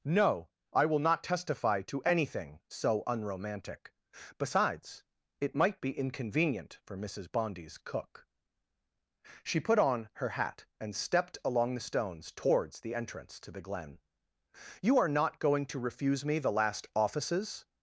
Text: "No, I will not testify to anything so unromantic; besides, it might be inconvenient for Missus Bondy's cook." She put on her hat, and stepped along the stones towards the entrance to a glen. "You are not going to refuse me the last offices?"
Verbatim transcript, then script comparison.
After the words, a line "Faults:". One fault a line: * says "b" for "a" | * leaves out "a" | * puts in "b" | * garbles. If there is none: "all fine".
"No, I will not testify to anything so unromantic; besides, it might be inconvenient for Missus Bondy's cook." She put on her hat, and stepped along the stones towards the entrance to the glen. "You are not going to refuse me the last offices?"
Faults:
* says "the" for "a"